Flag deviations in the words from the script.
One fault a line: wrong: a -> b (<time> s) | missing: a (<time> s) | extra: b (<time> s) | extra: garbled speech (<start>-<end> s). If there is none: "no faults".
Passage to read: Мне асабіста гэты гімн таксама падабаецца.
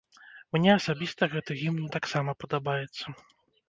no faults